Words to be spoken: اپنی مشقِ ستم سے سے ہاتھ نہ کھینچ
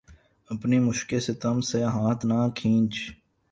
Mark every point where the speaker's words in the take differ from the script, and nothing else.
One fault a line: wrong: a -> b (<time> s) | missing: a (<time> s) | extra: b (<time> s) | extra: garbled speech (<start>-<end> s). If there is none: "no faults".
missing: سے (1.8 s)